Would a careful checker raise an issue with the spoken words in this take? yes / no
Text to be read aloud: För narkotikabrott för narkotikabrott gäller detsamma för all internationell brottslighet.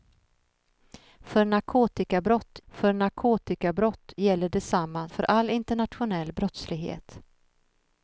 no